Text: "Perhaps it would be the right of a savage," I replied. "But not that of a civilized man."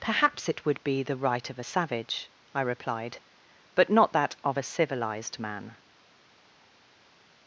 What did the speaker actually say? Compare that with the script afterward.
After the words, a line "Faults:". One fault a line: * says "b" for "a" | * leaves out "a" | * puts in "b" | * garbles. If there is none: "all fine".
"Perhaps it would be the right of a savage," I replied. "But not that of a civilized man."
Faults:
all fine